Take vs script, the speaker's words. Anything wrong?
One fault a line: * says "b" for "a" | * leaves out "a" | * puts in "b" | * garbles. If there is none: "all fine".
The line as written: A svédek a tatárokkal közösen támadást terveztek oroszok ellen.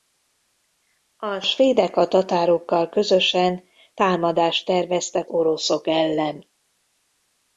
all fine